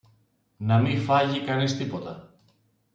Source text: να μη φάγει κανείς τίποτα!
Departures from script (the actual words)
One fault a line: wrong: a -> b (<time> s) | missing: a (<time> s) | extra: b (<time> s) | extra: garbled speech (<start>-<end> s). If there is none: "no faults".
no faults